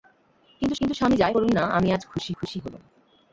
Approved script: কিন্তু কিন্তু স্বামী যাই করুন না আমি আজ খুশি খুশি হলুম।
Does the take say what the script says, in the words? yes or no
yes